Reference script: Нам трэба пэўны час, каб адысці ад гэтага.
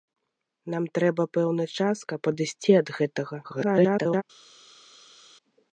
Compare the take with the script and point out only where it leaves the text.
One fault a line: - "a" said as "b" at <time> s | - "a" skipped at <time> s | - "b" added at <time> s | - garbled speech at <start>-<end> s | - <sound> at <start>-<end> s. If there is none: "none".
- garbled speech at 3.4-4.2 s